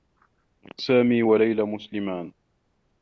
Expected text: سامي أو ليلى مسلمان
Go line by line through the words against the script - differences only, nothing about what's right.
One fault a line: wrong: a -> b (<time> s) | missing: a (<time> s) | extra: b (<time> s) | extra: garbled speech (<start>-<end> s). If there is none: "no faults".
wrong: أو -> و (1.2 s)